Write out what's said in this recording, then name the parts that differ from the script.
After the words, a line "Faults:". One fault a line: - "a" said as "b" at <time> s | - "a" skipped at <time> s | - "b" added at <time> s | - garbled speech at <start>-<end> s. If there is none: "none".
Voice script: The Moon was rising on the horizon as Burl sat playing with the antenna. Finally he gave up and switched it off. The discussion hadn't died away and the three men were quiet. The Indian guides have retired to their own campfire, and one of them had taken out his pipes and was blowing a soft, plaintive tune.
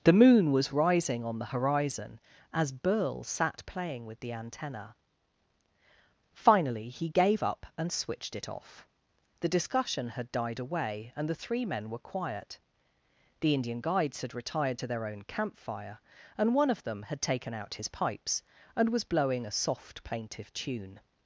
The Moon was rising on the horizon as Burl sat playing with the antenna. Finally he gave up and switched it off. The discussion had died away and the three men were quiet. The Indian guides had retired to their own campfire, and one of them had taken out his pipes and was blowing a soft, plaintive tune.
Faults:
- "hadn't" said as "had" at 10.1 s
- "have" said as "had" at 14.2 s